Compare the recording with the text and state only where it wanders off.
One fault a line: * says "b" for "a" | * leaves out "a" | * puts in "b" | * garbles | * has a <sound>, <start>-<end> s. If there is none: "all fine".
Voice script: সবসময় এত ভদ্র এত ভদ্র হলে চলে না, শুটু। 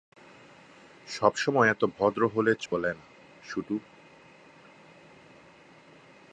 * leaves out "এত ভদ্র"
* has a dropout, 2.7-2.7 s